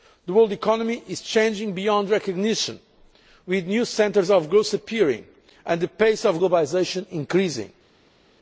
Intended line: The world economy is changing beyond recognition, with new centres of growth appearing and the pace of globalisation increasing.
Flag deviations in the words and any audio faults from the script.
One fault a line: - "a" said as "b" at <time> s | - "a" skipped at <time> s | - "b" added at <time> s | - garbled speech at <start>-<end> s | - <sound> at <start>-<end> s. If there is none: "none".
none